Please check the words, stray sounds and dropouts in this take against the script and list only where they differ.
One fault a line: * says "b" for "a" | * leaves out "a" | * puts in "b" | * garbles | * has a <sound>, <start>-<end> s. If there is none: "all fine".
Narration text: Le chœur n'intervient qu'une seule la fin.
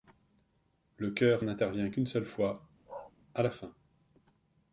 * puts in "fois à"
* has a bark, 2.9-3.1 s